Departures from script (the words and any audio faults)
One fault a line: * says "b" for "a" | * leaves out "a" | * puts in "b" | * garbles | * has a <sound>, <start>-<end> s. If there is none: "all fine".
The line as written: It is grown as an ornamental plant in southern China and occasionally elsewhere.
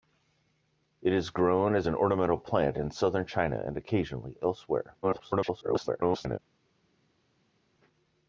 * garbles